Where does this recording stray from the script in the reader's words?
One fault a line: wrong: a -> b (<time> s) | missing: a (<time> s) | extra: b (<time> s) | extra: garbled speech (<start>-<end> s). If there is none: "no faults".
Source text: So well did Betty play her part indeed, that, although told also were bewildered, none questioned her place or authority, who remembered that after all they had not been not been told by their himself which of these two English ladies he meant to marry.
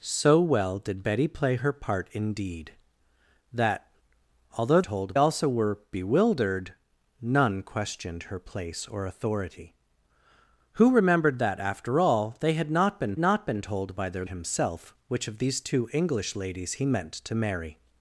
no faults